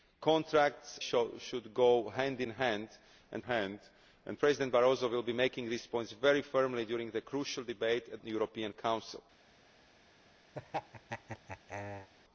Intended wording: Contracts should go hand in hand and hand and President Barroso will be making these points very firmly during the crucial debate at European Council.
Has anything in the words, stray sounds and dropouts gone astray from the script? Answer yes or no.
yes